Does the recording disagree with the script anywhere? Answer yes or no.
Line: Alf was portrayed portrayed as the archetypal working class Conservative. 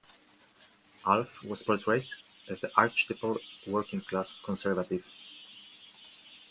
yes